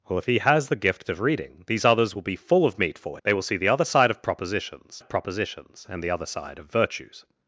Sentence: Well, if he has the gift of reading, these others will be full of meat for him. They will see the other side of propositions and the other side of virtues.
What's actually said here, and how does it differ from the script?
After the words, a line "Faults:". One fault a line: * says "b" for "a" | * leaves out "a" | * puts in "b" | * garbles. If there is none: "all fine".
Well, if he has the gift of reading, these others will be full of meat for. They will see the other side of propositions of propositions and the other side of virtues.
Faults:
* leaves out "him"
* puts in "of propositions"